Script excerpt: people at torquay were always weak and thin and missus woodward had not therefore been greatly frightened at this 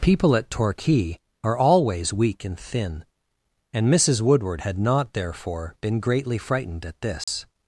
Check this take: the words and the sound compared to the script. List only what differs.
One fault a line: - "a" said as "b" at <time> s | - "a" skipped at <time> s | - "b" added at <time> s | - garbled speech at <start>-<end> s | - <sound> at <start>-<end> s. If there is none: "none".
- "were" said as "are" at 1.4 s
- dropout at 7.2-7.3 s